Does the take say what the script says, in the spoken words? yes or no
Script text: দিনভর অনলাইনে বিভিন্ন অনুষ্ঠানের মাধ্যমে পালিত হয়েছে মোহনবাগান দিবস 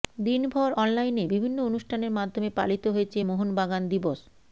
yes